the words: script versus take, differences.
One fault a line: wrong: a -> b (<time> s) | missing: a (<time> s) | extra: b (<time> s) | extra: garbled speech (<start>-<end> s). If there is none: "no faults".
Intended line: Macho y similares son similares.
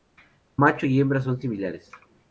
wrong: similares -> hembra (1.0 s)